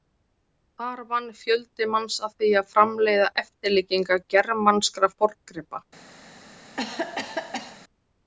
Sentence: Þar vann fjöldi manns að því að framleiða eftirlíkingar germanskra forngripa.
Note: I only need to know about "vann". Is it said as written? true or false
true